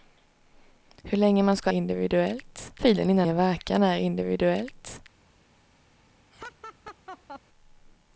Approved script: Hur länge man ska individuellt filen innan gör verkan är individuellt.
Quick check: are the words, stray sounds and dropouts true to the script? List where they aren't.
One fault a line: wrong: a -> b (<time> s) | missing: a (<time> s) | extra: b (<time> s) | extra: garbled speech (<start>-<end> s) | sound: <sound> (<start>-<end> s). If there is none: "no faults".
sound: laugh (6.3-7.4 s)